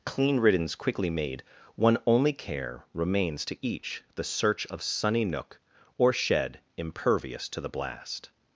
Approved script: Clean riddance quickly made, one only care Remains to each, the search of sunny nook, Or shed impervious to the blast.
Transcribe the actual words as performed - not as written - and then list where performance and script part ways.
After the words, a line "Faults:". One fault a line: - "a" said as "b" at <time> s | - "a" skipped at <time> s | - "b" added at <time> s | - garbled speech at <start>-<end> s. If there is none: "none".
Clean riddance quickly made, one only care Remains to each, the search of sunny nook, Or shed impervious to the blast.
Faults:
none